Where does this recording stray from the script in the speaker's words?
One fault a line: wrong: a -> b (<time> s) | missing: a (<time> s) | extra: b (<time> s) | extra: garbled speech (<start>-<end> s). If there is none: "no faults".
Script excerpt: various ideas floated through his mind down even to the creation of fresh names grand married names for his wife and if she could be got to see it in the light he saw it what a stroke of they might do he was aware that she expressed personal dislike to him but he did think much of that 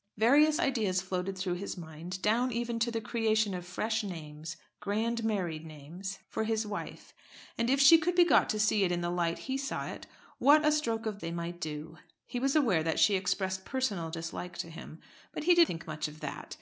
no faults